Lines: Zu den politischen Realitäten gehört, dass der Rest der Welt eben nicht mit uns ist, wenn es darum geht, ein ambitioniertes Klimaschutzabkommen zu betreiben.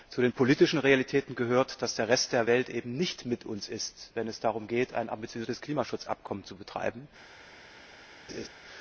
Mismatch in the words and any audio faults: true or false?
true